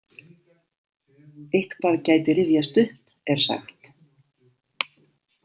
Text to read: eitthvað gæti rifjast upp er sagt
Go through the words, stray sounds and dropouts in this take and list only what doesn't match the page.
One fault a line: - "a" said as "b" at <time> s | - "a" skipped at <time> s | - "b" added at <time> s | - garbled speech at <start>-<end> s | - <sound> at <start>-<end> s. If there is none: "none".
none